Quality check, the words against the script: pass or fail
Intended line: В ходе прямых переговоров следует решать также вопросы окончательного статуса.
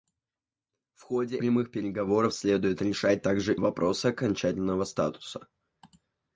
pass